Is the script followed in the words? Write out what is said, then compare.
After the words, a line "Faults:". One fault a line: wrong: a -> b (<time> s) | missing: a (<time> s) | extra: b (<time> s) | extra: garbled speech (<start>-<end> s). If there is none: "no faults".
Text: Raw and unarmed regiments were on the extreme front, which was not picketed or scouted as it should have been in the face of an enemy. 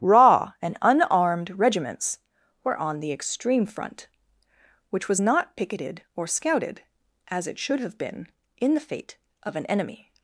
Raw and unarmed regiments were on the extreme front, which was not picketed or scouted as it should have been in the fate of an enemy.
Faults:
wrong: face -> fate (8.8 s)